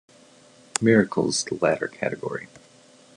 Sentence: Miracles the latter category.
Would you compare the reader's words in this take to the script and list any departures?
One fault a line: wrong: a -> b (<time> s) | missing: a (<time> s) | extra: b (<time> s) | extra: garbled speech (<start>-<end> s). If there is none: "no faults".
no faults